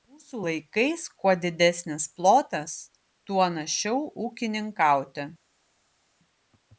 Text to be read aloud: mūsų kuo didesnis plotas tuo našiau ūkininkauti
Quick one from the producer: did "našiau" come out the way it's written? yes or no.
yes